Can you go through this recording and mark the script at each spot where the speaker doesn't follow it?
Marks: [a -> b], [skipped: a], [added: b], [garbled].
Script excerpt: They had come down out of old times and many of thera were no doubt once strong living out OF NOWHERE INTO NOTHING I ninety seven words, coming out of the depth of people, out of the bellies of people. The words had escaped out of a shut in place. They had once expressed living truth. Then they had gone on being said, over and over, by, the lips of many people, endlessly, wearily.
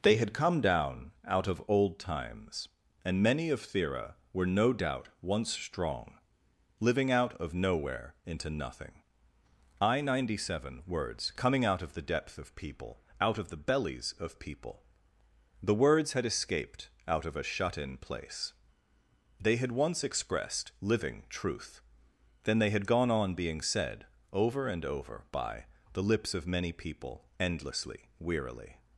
They had come down out of old times and many of thera were no doubt once strong living out OF NOWHERE INTO NOTHING I ninety seven words, coming out of the depth of people, out of the bellies of people. The words had escaped out of a shut in place. They had once expressed living truth. Then they had gone on being said, over and over, by, the lips of many people, endlessly, wearily.